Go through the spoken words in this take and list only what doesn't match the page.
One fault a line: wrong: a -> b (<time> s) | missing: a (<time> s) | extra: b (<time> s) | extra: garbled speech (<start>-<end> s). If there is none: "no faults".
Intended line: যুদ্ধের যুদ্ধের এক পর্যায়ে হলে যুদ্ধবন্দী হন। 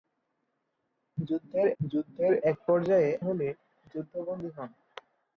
no faults